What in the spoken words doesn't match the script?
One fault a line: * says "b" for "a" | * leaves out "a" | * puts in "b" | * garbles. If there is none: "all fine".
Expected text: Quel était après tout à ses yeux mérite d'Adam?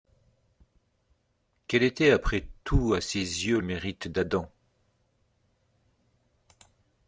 all fine